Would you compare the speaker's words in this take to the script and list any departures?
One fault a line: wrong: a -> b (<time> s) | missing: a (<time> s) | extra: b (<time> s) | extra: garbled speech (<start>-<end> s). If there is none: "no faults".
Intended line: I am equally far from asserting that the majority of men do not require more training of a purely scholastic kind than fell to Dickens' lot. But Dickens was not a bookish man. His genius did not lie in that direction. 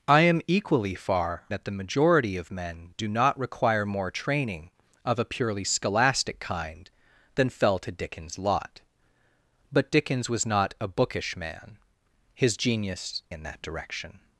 missing: from asserting (1.4 s)
missing: did not lie (13.2 s)